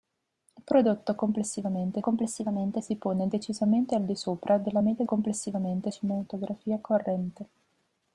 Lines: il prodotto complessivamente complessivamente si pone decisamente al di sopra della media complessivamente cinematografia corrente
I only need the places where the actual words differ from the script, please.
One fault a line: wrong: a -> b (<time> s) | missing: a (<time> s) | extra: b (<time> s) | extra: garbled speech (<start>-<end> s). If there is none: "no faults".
no faults